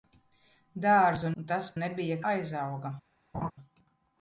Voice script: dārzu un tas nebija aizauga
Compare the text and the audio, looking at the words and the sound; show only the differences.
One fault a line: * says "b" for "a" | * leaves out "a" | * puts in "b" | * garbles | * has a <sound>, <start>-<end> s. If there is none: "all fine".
* has a laugh, 3.3-3.5 s